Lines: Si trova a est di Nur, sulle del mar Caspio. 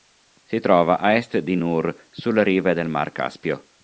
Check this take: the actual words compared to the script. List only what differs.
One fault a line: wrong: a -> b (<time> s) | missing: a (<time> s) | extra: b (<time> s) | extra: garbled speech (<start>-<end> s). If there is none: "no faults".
extra: rive (2.4 s)